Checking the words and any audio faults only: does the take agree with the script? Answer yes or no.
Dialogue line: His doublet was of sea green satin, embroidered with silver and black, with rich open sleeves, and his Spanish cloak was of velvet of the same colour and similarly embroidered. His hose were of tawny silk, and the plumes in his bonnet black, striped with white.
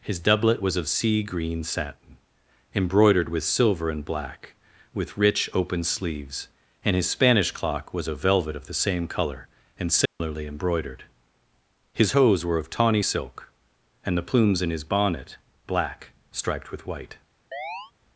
no